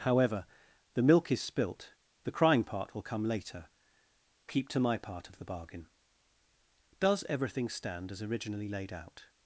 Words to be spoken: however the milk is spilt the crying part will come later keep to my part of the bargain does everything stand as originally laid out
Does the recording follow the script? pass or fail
pass